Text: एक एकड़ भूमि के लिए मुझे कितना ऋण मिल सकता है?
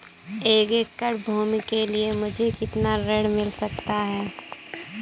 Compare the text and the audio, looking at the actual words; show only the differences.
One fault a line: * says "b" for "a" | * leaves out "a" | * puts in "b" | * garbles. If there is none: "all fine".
all fine